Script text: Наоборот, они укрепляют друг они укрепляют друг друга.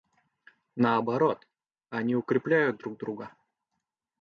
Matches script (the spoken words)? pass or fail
fail